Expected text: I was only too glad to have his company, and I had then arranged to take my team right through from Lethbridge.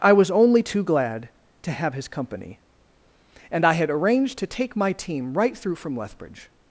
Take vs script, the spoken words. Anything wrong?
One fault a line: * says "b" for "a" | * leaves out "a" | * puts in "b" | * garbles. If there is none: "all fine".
* leaves out "then"